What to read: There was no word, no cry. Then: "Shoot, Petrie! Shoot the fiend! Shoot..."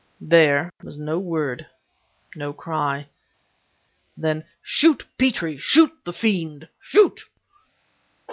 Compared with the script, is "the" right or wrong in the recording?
right